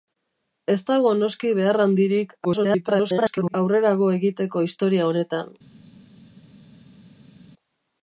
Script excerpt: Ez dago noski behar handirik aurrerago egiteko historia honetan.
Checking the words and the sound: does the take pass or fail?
fail